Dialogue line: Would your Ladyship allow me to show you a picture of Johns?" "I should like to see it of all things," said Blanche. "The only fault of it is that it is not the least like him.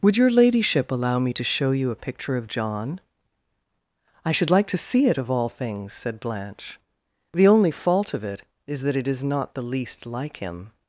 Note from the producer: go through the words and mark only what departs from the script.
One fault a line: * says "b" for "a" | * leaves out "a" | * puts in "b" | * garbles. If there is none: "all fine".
* says "John" for "Johns"